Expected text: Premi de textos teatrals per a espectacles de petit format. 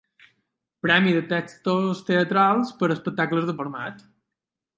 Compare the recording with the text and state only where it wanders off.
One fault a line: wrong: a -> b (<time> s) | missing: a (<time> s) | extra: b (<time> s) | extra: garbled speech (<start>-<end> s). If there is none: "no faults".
missing: petit (3.6 s)